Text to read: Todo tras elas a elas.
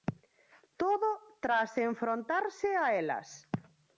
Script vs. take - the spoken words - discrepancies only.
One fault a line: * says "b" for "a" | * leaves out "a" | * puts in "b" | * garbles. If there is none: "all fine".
* says "enfrontarse" for "elas"